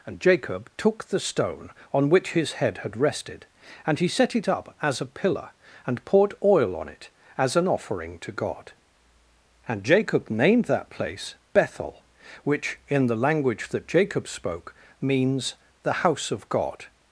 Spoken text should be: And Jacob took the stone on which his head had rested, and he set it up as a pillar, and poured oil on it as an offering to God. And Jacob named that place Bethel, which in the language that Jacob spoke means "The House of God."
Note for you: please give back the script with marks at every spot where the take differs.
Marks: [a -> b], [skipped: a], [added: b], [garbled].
And Jacob took the stone on which his head had rested, and he set it up as a pillar, and poured oil on it as an offering to God. And Jacob named that place Bethel, which in the language that Jacob spoke means "The House of God."